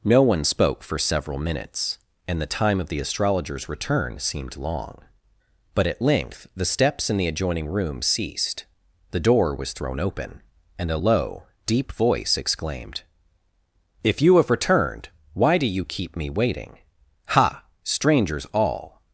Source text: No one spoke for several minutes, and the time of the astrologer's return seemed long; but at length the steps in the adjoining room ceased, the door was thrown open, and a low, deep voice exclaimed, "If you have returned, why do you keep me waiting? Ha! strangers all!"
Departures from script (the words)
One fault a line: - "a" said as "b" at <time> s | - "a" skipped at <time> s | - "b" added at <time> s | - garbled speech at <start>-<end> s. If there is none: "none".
none